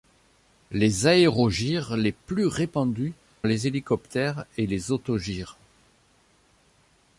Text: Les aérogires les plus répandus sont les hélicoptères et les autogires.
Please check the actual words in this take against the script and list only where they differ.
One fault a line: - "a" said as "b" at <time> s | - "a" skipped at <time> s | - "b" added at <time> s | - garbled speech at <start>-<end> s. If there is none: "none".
- "sont" skipped at 3.1 s